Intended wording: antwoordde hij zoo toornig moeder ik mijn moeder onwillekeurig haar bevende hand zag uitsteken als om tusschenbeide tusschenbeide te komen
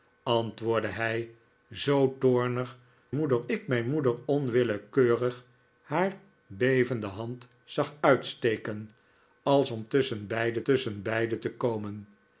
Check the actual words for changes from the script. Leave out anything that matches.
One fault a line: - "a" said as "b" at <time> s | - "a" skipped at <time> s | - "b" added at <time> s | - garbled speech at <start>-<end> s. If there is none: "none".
none